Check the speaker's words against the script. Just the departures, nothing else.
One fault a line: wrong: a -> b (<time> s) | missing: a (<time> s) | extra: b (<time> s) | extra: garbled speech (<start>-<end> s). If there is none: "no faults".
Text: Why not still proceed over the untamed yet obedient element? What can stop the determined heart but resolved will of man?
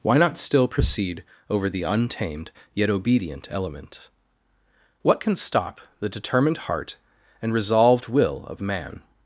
wrong: but -> and (7.4 s)